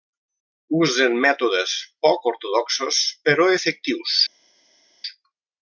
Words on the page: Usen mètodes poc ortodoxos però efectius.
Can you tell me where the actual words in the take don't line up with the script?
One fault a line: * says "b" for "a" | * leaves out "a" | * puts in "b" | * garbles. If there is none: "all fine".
all fine